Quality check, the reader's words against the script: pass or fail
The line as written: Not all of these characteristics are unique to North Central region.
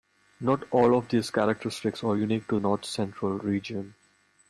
pass